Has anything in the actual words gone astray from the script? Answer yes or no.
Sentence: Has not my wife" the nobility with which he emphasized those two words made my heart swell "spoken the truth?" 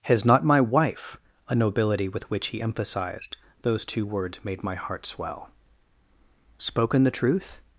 yes